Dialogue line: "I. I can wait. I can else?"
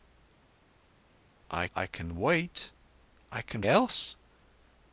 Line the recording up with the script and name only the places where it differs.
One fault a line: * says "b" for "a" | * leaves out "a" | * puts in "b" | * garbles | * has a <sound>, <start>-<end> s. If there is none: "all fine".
all fine